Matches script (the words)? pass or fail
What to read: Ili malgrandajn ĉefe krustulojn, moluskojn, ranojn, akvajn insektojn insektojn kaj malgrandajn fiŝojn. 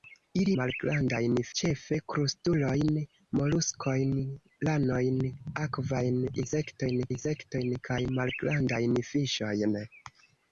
pass